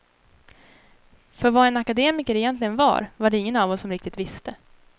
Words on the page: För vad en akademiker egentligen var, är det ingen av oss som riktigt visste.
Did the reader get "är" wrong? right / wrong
wrong